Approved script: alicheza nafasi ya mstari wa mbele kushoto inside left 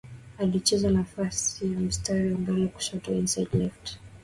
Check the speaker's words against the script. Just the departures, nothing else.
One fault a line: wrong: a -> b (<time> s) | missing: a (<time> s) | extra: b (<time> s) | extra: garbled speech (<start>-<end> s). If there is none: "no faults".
missing: wa (2.3 s)